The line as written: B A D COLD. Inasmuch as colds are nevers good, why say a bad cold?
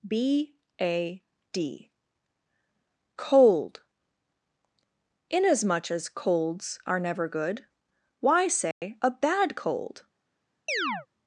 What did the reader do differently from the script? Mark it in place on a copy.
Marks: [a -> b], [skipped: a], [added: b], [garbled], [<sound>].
B A D COLD. Inasmuch as colds are [nevers -> never] good, why say [dropout] a bad cold? [chirp]